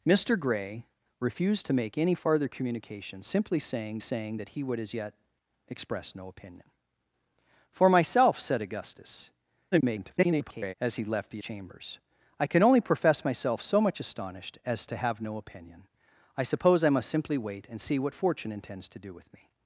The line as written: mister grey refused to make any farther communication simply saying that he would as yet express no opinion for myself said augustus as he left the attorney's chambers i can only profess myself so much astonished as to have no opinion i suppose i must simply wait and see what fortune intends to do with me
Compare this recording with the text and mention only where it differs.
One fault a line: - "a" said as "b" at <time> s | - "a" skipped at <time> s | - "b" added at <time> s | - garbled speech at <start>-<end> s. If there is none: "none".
- "saying" added at 4.0 s
- garbled speech at 9.7-10.7 s
- "attorney's" skipped at 11.4 s